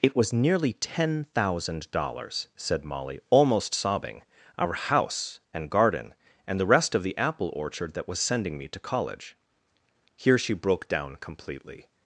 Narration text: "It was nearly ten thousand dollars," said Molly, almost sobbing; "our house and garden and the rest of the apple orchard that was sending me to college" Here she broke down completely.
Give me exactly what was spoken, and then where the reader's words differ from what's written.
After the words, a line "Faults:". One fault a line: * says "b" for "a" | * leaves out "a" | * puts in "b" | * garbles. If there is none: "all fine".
"It was nearly ten thousand dollars," said Molly, almost sobbing; "our house and garden and the rest of the apple orchard that was sending me to college" Here she broke down completely.
Faults:
all fine